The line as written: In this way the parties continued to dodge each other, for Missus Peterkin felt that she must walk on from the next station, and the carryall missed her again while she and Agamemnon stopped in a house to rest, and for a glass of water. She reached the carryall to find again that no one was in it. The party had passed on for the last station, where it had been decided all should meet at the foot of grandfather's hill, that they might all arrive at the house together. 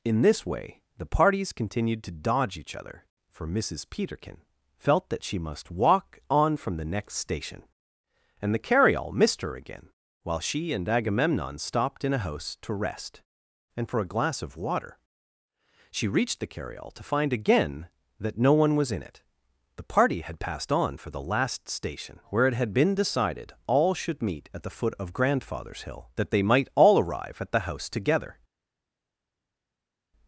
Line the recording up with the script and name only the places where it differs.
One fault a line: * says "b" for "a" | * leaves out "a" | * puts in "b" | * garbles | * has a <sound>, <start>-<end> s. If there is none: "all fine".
all fine